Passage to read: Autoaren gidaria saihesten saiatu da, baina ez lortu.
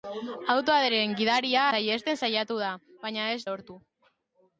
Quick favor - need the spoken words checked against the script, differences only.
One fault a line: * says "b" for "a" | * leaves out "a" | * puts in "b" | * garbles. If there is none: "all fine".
all fine